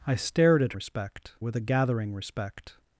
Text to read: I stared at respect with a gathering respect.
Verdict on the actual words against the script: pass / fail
pass